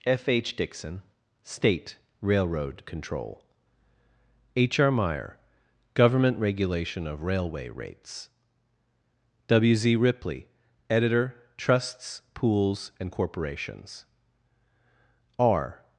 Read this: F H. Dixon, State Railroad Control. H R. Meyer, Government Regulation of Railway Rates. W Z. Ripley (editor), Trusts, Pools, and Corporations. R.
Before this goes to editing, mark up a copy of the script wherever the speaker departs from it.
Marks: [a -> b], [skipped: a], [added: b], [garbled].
F H. Dixon, State Railroad Control. H R. Meyer, Government Regulation of Railway Rates. W Z. Ripley (editor), Trusts, Pools, and Corporations. R.